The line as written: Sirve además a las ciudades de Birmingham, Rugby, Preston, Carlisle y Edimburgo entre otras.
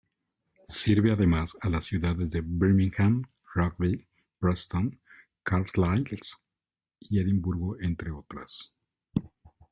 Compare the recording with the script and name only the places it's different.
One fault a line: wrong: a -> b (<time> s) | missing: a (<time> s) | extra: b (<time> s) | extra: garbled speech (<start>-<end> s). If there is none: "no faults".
no faults